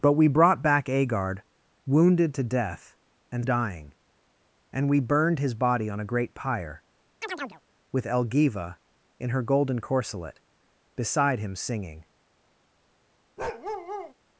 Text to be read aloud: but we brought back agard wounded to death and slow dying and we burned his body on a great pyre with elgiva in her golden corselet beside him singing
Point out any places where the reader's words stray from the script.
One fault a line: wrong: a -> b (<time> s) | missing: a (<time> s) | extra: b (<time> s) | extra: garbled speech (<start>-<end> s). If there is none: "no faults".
missing: slow (3.5 s)